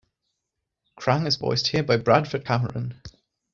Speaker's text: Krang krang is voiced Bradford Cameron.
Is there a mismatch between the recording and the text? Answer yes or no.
yes